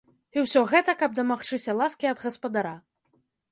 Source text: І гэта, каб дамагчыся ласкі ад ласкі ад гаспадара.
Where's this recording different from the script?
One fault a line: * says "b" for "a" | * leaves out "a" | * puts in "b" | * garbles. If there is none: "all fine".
* puts in "ўсё"
* leaves out "ласкі ад"